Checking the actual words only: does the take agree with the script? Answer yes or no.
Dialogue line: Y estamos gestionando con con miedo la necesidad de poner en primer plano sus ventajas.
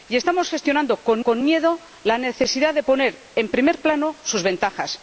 yes